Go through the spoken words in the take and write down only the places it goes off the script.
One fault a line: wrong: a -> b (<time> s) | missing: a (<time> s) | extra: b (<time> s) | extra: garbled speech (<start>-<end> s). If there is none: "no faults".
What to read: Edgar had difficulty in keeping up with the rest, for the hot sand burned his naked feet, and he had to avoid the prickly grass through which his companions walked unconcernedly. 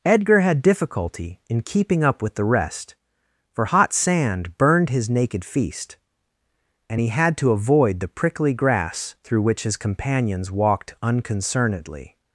missing: the (3.6 s)
wrong: feet -> feast (5.4 s)